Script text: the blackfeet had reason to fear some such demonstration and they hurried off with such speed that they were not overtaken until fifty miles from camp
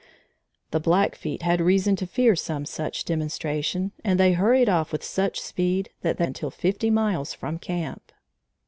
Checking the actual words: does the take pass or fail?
fail